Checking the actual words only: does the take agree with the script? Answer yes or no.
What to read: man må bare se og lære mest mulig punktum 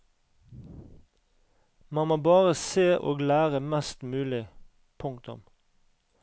yes